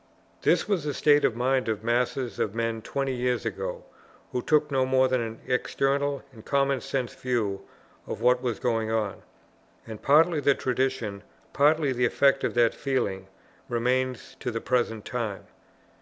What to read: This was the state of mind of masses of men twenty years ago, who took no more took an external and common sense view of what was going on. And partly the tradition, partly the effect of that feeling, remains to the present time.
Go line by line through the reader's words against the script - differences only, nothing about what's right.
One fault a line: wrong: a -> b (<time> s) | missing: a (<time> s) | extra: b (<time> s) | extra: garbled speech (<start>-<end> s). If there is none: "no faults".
wrong: took -> than (5.0 s)